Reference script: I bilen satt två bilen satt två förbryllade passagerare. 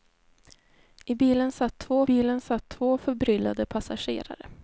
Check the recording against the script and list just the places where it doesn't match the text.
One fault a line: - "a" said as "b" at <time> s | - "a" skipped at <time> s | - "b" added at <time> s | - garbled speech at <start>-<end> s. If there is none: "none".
none